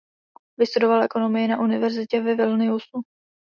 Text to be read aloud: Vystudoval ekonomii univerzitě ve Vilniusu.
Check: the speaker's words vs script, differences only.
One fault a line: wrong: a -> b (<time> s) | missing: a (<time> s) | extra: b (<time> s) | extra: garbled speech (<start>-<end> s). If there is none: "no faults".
extra: na (1.5 s)